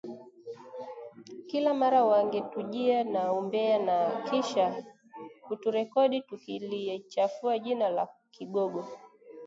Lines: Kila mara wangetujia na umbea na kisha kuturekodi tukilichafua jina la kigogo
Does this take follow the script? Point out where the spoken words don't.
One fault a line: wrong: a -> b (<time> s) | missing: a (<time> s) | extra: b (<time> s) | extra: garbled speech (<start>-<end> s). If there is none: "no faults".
no faults